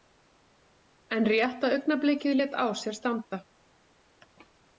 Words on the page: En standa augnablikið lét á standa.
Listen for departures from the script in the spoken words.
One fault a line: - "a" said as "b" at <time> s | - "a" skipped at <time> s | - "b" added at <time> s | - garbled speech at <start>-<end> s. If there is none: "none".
- "standa" said as "rétta" at 1.3 s
- "sér" added at 2.8 s